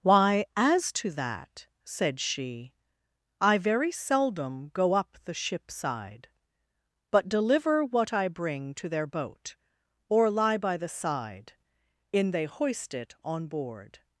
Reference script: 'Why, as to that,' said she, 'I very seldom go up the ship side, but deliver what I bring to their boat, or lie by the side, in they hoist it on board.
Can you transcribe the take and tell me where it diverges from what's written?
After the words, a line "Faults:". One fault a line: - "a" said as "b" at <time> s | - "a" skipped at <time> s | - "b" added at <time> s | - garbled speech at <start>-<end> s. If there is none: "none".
'Why, as to that,' said she, 'I very seldom go up the ship side, but deliver what I bring to their boat, or lie by the side, in they hoist it on board.
Faults:
none